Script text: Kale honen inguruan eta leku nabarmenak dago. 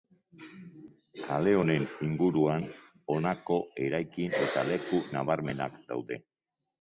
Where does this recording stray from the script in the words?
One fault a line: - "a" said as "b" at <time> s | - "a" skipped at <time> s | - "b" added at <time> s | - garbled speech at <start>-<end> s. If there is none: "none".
- "honako eraikin" added at 3.1 s
- "dago" said as "daude" at 5.9 s